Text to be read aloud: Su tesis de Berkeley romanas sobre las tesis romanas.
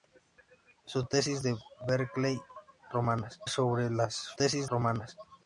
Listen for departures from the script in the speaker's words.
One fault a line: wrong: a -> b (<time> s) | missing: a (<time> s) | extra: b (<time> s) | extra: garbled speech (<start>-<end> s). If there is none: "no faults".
no faults